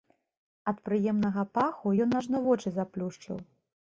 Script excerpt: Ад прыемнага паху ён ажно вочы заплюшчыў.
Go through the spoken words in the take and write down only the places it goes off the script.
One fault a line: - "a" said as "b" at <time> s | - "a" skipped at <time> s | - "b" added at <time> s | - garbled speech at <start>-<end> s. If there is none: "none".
none